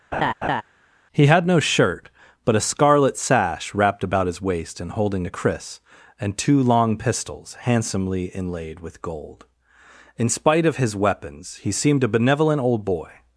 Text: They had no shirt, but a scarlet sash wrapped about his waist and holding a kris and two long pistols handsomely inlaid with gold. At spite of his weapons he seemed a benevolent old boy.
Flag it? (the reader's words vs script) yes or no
yes